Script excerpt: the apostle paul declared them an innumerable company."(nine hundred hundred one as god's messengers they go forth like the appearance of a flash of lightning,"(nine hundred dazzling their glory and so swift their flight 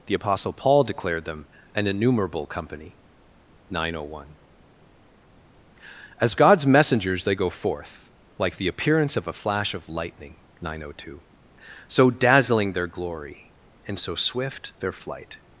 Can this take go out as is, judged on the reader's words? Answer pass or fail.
fail